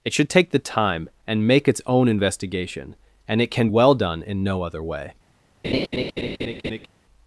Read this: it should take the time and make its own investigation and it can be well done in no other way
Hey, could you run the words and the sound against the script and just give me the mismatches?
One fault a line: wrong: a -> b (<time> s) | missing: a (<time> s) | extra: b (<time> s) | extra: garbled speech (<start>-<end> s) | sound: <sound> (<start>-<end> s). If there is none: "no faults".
missing: be (3.7 s)
sound: laugh (5.6-6.9 s)